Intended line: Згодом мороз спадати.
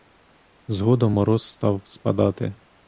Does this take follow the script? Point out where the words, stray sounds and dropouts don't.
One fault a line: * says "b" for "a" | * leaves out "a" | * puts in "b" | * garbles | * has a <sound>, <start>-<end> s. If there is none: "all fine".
* puts in "став"